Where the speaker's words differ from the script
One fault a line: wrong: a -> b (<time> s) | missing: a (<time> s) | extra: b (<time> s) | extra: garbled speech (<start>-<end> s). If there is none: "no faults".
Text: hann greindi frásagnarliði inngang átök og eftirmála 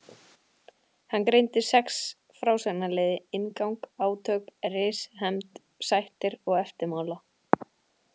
extra: sex (1.7 s)
extra: ris hefnd sættir (4.8 s)